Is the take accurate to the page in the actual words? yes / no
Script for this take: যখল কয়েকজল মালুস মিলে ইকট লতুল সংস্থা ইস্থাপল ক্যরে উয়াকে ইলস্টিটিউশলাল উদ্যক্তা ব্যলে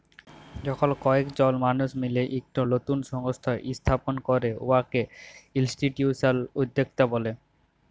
yes